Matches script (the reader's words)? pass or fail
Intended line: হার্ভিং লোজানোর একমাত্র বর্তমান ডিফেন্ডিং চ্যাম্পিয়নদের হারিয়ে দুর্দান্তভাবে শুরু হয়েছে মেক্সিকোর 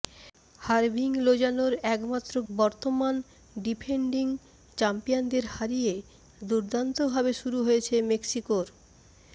pass